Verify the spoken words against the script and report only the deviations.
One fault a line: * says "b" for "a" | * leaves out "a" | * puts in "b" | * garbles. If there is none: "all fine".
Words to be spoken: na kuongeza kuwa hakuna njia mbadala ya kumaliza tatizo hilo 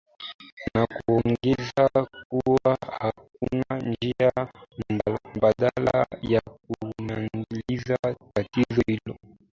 all fine